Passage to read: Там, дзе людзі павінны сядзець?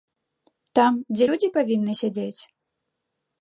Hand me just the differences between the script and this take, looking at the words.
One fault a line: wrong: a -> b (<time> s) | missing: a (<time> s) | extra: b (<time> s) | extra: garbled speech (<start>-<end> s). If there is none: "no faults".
no faults